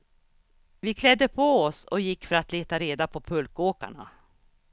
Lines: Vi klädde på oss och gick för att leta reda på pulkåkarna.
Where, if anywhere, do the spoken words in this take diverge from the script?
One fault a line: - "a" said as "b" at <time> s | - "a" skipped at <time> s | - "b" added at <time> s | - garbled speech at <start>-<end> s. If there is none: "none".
none